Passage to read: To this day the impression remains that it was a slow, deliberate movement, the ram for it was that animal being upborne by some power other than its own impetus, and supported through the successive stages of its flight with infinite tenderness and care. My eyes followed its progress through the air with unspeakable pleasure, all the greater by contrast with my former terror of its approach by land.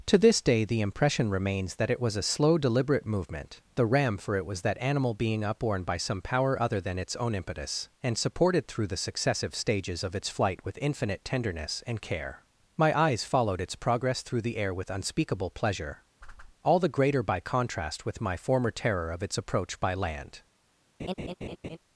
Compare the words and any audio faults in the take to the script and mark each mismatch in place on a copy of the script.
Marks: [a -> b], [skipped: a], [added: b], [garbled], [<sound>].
To this day the impression remains that it was a slow, deliberate movement, the ram for it was that animal being upborne by some power other than its own impetus, and supported through the successive stages of its flight with infinite tenderness and care. My eyes followed its progress through the air with unspeakable pleasure, [whoosh] all the greater by contrast with my former terror of its approach by land. [laugh]